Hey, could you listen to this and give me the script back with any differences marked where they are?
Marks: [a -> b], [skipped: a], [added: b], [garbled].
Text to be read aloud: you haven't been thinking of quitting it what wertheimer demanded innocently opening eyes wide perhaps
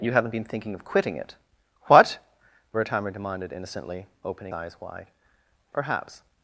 you haven't been thinking of quitting it what wertheimer demanded innocently opening eyes wide perhaps